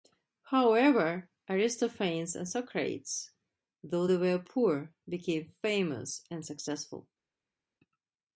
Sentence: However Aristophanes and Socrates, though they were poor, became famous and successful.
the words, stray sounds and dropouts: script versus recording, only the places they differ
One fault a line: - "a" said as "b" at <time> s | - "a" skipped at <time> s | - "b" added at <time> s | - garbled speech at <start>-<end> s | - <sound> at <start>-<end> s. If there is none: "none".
none